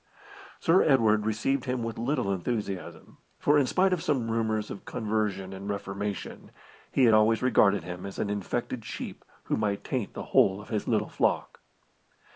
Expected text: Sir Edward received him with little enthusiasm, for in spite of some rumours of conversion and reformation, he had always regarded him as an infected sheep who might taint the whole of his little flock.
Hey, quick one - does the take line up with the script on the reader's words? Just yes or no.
yes